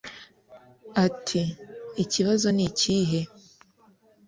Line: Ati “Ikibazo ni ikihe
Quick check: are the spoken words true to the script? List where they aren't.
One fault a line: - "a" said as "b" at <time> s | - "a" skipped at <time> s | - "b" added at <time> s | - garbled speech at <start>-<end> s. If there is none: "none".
none